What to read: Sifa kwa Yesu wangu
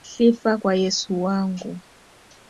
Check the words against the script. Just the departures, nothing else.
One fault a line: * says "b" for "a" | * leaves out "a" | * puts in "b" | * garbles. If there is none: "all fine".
all fine